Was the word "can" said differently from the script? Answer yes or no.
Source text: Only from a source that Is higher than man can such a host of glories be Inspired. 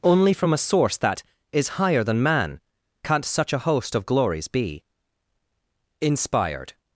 yes